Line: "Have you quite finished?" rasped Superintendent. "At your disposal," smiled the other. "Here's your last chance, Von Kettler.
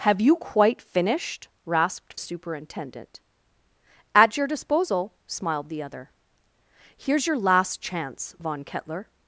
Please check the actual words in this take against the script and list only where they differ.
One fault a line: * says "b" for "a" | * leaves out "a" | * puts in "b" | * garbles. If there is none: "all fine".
all fine